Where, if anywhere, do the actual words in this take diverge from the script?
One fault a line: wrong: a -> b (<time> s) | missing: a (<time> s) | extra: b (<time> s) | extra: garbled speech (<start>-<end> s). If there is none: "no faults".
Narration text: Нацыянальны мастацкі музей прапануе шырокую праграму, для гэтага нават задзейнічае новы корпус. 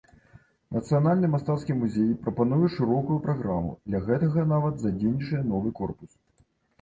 no faults